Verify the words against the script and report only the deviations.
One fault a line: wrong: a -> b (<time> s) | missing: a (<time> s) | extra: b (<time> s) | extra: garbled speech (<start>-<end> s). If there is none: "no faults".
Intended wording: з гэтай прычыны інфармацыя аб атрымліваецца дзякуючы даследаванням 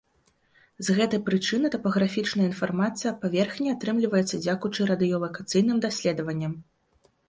extra: тапаграфічная (1.7 s)
extra: паверхні (3.3 s)
extra: радыёлакацыйным (5.0 s)